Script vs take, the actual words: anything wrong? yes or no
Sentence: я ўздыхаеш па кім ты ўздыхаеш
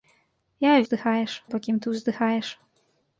no